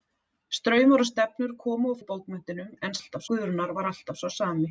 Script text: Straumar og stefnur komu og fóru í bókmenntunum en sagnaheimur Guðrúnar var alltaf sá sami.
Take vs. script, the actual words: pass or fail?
fail